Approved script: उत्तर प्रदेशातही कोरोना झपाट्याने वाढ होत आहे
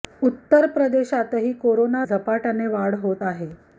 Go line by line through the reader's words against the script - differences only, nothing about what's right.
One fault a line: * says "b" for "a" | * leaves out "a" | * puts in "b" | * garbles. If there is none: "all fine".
all fine